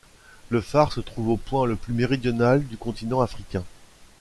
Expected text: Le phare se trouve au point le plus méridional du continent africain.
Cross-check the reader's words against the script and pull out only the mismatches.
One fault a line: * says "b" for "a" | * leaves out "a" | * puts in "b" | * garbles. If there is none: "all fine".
all fine